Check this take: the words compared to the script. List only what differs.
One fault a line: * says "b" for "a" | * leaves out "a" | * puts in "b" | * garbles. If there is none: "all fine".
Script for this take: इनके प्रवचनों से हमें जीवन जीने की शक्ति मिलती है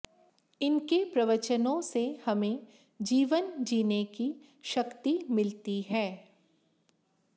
all fine